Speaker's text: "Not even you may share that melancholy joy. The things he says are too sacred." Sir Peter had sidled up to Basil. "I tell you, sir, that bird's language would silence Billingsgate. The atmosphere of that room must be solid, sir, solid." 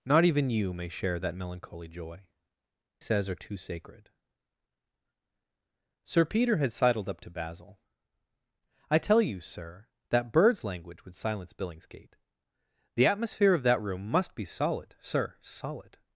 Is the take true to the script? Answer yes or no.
no